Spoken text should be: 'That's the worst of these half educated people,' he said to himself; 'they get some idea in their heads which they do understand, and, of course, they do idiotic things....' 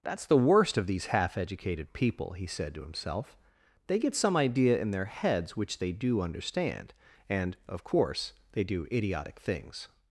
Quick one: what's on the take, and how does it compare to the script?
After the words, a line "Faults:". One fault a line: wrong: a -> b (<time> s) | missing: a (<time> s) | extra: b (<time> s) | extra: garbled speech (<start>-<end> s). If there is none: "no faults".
'That's the worst of these half educated people,' he said to himself; 'they get some idea in their heads which they do understand, and, of course, they do idiotic things....'
Faults:
no faults